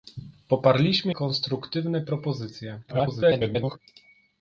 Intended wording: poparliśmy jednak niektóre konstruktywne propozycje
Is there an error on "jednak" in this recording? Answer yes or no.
yes